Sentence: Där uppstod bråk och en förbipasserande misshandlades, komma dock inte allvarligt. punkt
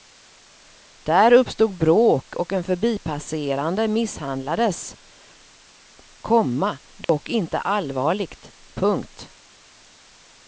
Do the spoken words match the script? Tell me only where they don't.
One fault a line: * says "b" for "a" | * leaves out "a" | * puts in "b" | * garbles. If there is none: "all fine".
all fine